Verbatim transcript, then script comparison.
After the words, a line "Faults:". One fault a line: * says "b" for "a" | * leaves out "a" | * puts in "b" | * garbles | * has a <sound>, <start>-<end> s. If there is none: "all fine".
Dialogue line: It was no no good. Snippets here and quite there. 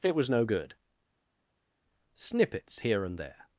It was no good. Snippets here and there.
Faults:
* leaves out "no"
* leaves out "quite"